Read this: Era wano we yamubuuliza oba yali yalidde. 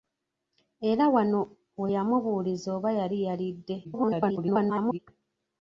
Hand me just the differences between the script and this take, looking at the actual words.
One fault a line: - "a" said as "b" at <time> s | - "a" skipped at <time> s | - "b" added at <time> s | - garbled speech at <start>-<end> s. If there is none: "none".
- garbled speech at 3.8-5.0 s